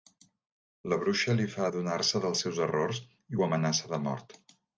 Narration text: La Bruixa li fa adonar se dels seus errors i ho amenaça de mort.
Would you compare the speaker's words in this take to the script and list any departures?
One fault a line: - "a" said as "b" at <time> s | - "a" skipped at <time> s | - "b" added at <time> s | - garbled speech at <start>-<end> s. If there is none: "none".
none